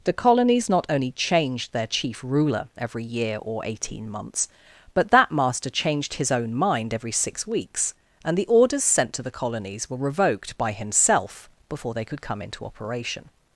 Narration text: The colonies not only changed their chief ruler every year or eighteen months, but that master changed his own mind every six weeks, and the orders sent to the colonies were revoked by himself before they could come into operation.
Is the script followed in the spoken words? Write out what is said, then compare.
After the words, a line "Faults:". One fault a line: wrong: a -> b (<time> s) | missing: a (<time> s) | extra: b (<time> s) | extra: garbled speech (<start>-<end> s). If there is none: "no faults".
The colonies not only changed their chief ruler every year or eighteen months, but that master changed his own mind every six weeks, and the orders sent to the colonies were revoked by himself before they could come into operation.
Faults:
no faults